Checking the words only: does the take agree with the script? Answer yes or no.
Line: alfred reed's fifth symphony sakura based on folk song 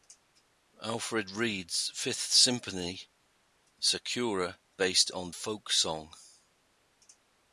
yes